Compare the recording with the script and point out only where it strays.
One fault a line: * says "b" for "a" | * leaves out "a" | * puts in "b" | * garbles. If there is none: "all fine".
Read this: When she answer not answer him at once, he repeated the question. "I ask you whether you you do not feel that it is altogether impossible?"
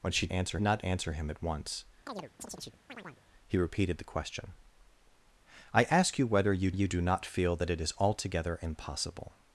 all fine